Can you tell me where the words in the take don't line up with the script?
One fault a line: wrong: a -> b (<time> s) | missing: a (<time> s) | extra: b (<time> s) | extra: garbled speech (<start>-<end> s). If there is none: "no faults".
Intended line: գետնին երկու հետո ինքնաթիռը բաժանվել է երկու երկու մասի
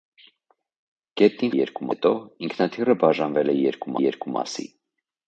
no faults